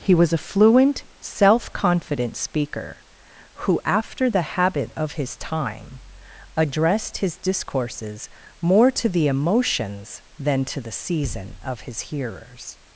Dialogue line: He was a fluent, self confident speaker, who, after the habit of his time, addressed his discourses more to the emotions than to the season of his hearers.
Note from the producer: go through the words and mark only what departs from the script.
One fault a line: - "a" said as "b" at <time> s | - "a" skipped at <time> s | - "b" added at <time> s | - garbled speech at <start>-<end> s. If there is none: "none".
none